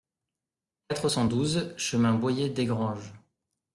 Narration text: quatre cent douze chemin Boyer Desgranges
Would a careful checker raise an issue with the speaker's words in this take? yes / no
no